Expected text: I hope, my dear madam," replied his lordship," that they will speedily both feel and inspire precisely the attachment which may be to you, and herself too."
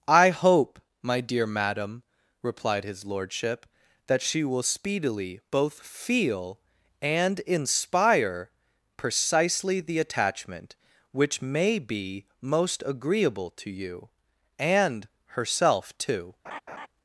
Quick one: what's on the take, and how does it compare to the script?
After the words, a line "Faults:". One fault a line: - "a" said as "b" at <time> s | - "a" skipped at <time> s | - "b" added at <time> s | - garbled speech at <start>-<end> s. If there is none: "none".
I hope, my dear madam," replied his lordship," that she will speedily both feel and inspire precisely the attachment which may be most agreeable to you, and herself too."
Faults:
- "they" said as "she" at 4.2 s
- "most agreeable" added at 12.4 s